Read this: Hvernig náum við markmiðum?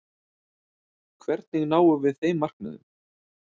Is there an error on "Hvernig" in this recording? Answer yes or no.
no